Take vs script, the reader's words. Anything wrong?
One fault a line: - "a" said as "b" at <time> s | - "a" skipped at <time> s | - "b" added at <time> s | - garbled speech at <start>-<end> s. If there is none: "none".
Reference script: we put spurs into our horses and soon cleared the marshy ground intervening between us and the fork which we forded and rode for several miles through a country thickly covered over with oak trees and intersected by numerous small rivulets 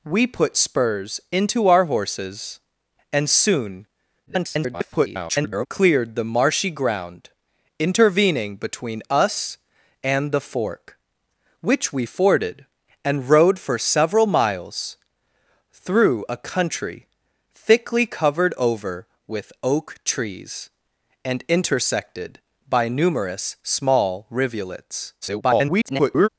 - garbled speech at 4.3-5.7 s
- garbled speech at 25.2-26.3 s